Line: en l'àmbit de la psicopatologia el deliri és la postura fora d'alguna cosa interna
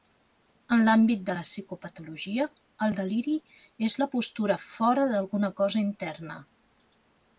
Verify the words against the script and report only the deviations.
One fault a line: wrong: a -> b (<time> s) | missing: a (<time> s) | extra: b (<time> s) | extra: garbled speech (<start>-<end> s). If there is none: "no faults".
no faults